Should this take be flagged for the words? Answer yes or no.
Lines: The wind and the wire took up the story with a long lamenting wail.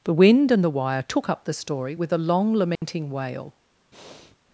no